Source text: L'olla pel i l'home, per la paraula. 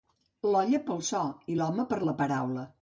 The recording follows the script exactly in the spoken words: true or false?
false